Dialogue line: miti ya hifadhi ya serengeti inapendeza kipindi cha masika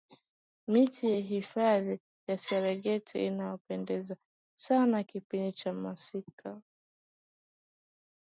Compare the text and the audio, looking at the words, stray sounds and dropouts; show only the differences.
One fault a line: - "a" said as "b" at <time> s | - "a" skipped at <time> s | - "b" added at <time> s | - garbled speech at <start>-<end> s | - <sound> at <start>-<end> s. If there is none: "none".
- "sana" added at 4.6 s